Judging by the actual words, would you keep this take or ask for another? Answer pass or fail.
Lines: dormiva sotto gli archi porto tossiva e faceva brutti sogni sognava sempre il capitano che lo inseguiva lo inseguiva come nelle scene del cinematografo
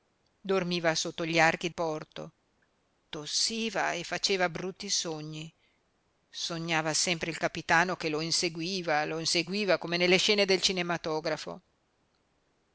pass